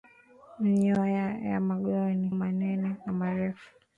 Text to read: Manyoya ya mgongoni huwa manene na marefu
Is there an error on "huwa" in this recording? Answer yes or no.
yes